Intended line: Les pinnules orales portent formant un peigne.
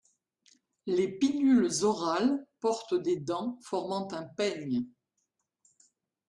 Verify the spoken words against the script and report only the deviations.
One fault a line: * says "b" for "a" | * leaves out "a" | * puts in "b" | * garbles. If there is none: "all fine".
* puts in "des dents"